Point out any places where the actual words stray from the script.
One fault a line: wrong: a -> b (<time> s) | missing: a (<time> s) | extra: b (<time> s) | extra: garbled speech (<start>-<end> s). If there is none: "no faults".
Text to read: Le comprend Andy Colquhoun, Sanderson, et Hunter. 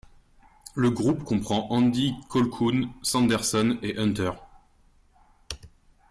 extra: groupe (0.9 s)